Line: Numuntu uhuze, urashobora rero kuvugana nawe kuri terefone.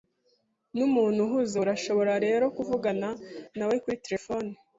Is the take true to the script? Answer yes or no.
yes